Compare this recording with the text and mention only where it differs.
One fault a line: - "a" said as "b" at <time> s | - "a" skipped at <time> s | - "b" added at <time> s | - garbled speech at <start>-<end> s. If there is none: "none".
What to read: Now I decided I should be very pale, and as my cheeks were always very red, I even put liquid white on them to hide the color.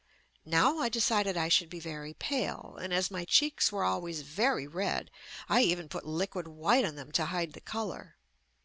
none